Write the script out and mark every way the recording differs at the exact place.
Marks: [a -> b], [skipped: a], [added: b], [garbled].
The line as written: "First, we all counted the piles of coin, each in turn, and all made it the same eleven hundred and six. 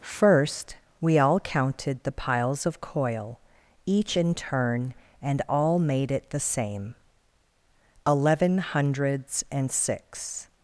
"First, we all counted the piles of [coin, -> coil] each in turn, and all made it the same eleven [hundred -> hundreds] and six.